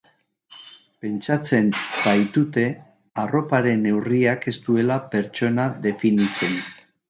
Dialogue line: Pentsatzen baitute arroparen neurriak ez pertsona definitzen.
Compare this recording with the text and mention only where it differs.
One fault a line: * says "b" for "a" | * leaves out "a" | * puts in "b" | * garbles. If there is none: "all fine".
* puts in "duela"